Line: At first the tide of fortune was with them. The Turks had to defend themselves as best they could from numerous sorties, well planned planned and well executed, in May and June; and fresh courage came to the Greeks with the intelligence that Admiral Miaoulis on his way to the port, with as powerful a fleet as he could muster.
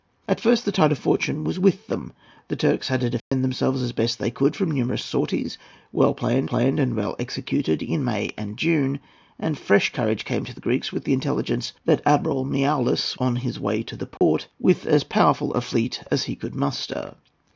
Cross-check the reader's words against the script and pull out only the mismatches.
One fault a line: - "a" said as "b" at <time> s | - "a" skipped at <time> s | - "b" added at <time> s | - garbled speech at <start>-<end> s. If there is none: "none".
none